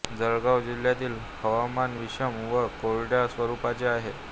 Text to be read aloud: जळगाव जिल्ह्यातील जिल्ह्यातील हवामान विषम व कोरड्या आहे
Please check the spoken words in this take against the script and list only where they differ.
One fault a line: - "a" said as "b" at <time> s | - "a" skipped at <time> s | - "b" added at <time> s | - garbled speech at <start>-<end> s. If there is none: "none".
- "जिल्ह्यातील" skipped at 1.2 s
- "स्वरूपाचे" added at 3.3 s